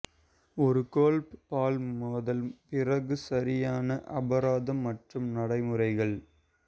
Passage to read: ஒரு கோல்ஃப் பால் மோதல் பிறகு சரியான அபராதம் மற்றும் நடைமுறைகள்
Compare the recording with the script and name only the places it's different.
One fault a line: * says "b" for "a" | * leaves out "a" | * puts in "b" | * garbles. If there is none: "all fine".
all fine